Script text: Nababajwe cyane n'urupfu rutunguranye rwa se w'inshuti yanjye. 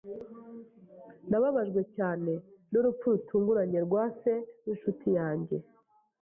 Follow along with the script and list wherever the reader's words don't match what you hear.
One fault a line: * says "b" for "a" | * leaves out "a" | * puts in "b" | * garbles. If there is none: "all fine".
all fine